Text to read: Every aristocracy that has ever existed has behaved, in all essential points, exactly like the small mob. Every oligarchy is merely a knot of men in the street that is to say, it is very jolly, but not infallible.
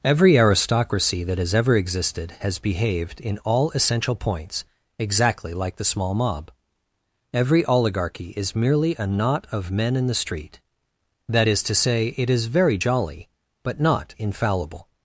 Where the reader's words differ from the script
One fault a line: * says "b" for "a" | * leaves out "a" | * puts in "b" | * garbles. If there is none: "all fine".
all fine